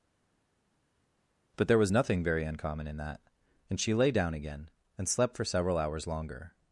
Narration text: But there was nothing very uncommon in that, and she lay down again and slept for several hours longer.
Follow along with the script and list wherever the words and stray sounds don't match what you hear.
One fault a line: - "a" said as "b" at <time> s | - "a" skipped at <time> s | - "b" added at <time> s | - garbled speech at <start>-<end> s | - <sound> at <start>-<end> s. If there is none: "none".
none